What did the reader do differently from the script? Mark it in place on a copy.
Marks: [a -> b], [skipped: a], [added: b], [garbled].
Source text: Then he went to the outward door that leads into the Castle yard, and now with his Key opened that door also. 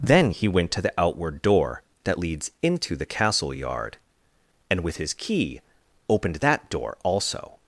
Then he went to the outward door that leads into the Castle yard, and [skipped: now] with his Key opened that door also.